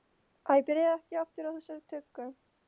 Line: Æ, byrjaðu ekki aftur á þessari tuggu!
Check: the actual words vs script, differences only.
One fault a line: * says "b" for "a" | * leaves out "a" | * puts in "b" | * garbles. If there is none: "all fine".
all fine